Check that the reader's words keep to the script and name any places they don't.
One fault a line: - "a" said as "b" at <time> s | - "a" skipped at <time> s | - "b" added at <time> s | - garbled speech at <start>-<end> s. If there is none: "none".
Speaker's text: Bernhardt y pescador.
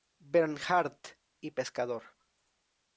none